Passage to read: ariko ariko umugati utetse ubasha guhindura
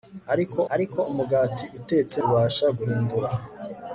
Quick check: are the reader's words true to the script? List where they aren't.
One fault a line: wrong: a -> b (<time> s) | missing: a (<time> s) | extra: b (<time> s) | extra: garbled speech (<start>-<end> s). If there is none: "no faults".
no faults